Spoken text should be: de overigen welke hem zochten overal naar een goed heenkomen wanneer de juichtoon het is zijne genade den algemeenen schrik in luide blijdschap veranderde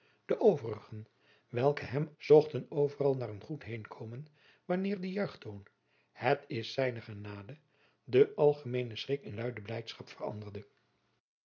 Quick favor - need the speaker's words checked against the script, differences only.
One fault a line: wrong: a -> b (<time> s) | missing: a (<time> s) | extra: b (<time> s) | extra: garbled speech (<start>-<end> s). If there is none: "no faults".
no faults